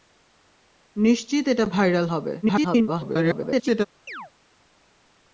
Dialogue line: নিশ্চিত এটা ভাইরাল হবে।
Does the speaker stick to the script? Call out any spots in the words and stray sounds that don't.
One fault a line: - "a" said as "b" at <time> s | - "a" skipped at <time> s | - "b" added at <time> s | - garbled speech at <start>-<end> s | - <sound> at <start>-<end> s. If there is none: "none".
- garbled speech at 2.4-3.9 s
- chirp at 4.1-4.3 s